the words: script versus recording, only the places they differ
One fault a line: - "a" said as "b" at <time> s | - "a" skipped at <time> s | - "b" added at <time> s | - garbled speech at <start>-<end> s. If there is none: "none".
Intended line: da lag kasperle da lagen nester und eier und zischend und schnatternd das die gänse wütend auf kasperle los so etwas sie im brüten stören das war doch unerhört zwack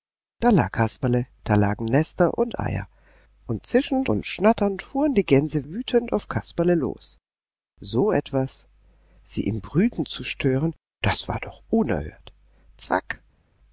- "das" said as "fuhren" at 4.8 s
- "zu" added at 10.1 s